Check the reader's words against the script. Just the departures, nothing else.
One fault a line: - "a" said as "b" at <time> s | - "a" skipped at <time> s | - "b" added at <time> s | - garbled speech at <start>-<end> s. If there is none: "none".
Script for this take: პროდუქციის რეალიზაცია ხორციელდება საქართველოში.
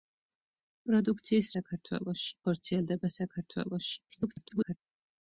- "რეალიზაცია" said as "საქართველოში" at 1.6 s
- garbled speech at 4.1-4.8 s